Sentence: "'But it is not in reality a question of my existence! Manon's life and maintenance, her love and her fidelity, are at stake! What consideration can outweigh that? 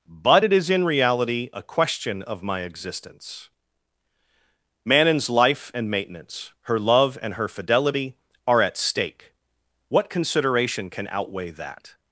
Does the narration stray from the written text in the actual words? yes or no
yes